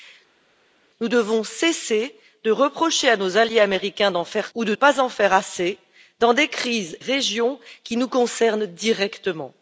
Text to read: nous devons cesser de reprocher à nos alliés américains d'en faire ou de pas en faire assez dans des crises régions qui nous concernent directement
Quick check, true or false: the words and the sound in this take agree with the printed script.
true